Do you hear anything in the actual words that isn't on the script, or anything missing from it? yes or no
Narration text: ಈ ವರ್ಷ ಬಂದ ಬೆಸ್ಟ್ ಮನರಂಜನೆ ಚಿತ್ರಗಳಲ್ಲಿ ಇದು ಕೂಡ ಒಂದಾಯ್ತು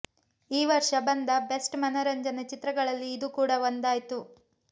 no